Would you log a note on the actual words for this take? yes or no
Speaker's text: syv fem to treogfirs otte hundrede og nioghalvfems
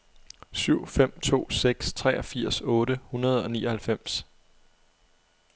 yes